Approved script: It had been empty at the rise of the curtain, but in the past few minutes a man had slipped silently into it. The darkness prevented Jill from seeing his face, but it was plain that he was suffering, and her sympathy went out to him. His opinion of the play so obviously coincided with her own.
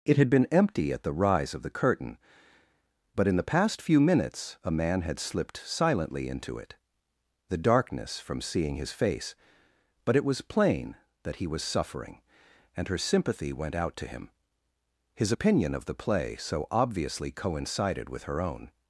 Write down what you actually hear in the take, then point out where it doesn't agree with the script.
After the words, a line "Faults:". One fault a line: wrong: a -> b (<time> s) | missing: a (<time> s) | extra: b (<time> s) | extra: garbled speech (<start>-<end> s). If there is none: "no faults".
It had been empty at the rise of the curtain, but in the past few minutes a man had slipped silently into it. The darkness from seeing his face, but it was plain that he was suffering, and her sympathy went out to him. His opinion of the play so obviously coincided with her own.
Faults:
missing: prevented Jill (8.2 s)